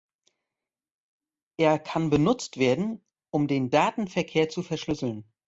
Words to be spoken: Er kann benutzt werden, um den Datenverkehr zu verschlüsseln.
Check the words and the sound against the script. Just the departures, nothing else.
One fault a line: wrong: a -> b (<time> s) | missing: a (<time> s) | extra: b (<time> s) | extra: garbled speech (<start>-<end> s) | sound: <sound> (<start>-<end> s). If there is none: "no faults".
no faults